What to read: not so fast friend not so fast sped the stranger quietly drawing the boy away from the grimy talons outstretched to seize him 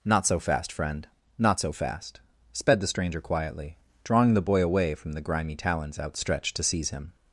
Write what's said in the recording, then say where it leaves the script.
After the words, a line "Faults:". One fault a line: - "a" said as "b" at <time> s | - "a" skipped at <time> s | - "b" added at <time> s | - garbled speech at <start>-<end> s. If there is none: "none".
not so fast friend not so fast sped the stranger quietly drawing the boy away from the grimy talons outstretched to seize him
Faults:
none